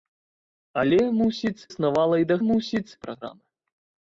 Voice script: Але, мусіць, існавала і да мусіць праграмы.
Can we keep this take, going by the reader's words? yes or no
yes